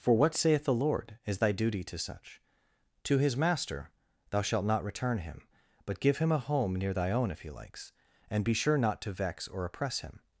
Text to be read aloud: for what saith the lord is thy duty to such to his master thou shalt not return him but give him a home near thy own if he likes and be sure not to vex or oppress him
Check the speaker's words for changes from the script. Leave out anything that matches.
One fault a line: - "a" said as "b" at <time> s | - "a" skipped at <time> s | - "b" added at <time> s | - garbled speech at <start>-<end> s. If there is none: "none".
none